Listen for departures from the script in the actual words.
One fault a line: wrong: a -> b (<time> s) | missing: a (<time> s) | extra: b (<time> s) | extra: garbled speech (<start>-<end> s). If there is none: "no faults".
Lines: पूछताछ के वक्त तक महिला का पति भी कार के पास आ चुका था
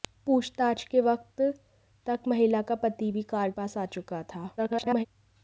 missing: के (3.5 s)
extra: garbled speech (4.6-5.1 s)